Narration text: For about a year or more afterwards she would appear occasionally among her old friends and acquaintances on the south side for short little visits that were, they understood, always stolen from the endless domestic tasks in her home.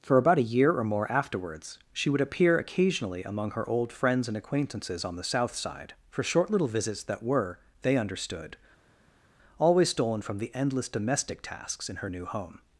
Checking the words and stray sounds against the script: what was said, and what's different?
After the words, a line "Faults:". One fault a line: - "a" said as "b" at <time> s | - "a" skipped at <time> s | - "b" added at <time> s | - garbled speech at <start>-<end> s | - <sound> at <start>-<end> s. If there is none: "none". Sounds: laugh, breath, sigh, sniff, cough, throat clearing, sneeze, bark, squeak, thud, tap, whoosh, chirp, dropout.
For about a year or more afterwards she would appear occasionally among her old friends and acquaintances on the south side for short little visits that were, they understood, always stolen from the endless domestic tasks in her new home.
Faults:
- "new" added at 12.1 s